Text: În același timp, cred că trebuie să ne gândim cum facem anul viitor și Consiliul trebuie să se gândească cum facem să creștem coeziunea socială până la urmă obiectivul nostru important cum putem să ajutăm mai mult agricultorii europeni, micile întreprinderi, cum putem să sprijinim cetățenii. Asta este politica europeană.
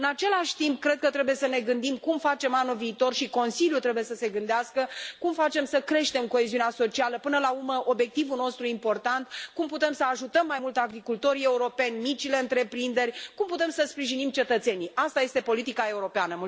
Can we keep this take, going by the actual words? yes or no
yes